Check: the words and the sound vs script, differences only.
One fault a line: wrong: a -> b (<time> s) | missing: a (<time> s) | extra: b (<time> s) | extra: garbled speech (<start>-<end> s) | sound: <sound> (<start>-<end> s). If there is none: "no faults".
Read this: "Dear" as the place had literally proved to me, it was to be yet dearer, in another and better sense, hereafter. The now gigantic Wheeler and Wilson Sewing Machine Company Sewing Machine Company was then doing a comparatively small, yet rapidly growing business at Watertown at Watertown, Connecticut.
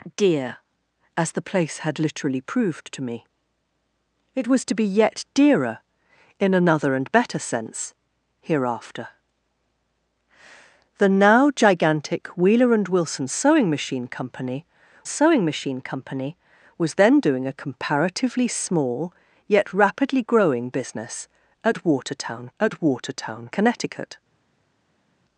no faults